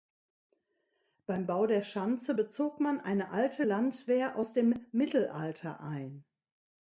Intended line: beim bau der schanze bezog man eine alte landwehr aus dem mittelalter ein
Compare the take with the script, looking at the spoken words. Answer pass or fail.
pass